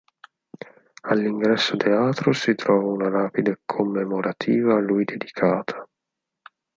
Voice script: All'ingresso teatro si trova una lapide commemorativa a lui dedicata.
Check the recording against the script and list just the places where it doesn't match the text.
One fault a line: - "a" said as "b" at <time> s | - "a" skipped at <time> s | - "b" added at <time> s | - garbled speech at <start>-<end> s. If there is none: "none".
none